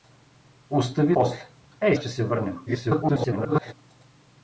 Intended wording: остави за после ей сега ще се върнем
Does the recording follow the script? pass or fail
fail